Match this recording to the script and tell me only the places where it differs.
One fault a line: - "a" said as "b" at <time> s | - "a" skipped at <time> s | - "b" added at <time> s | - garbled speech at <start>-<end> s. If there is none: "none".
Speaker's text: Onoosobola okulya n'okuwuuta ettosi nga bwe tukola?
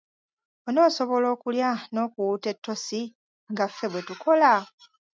- "ffe" added at 3.7 s